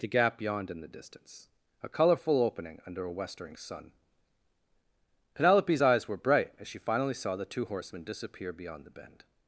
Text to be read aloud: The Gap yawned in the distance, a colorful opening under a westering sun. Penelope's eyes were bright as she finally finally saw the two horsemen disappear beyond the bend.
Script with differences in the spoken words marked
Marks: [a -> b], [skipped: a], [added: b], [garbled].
The Gap yawned in the distance, a colorful opening under a westering sun. Penelope's eyes were bright as she finally [skipped: finally] saw the two horsemen disappear beyond the bend.